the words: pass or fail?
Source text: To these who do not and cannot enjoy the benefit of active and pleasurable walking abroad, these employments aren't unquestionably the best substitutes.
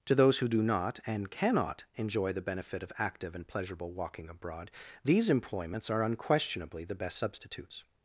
fail